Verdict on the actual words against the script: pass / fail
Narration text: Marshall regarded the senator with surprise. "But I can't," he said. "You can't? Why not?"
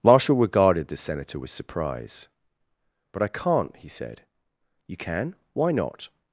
fail